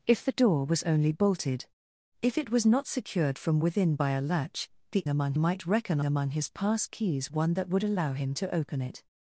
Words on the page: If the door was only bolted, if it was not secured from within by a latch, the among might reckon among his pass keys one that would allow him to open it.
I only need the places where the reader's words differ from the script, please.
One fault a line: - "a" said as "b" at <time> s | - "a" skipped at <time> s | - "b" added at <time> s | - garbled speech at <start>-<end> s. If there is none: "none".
none